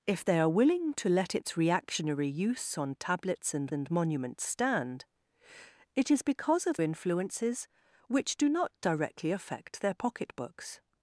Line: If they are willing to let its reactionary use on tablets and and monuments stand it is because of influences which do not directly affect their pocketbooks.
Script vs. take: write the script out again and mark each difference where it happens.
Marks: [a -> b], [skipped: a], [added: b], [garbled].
If they are willing to let its reactionary use on tablets and and monuments stand it is because of influences which do not directly affect their pocketbooks.